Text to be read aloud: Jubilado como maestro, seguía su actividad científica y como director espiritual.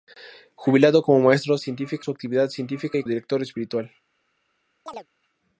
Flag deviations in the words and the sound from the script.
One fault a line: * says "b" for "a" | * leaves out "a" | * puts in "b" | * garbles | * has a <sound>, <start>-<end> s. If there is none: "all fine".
* says "científica" for "seguía"
* leaves out "como"
* has a chirp, 4.9-5.1 s